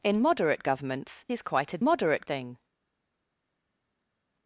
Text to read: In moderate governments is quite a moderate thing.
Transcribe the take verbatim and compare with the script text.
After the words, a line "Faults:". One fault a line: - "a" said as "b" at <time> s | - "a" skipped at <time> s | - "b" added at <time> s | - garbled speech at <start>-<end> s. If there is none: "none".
In moderate governments is quite a moderate thing.
Faults:
none